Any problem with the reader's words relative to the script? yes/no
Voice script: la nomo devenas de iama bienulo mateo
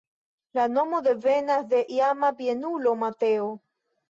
no